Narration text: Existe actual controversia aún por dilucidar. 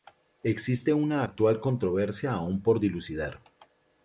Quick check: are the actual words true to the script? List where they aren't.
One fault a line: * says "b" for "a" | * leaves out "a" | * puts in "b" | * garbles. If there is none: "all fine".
* puts in "una"